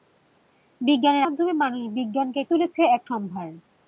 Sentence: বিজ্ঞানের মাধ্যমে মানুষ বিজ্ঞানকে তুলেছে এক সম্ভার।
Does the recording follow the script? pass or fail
pass